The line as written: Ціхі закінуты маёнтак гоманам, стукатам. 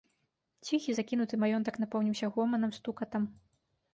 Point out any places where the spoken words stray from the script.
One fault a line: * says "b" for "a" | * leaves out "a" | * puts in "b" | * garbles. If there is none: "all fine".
* puts in "напоўніўся"